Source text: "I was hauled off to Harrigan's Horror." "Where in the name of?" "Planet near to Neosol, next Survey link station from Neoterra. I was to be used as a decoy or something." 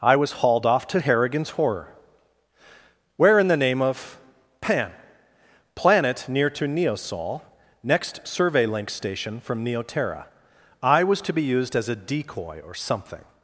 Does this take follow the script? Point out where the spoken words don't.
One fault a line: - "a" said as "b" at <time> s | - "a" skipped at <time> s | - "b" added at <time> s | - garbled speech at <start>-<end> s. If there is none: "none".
- "pan" added at 4.6 s